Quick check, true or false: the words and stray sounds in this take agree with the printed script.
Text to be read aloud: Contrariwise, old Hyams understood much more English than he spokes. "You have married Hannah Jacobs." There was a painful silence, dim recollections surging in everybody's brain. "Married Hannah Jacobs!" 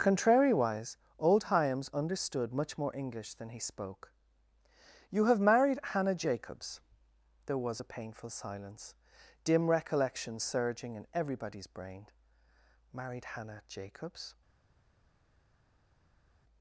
false